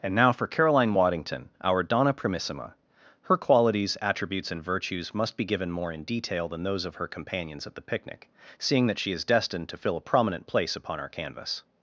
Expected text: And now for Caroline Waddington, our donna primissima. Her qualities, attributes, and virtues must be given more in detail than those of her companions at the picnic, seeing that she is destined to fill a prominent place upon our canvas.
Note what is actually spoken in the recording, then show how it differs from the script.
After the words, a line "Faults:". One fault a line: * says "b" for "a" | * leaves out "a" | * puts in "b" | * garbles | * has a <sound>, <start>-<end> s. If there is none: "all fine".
And now for Caroline Waddington, our donna primissima. Her qualities, attributes, and virtues must be given more in detail than those of her companions at the picnic, seeing that she is destined to fill a prominent place upon our canvas.
Faults:
all fine